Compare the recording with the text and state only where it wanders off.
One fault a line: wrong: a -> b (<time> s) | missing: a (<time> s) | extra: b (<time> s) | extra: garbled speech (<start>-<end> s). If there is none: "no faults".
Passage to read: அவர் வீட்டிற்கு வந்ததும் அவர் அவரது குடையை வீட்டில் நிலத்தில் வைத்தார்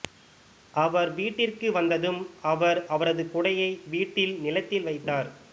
no faults